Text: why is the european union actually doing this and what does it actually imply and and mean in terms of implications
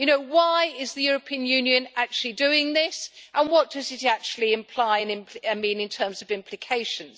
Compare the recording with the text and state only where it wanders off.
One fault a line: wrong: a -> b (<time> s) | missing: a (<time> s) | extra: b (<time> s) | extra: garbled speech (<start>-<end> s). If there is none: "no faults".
missing: and (5.6 s)